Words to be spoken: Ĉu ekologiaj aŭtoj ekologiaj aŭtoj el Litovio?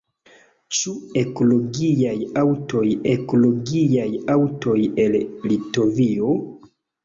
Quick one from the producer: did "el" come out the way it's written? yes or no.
yes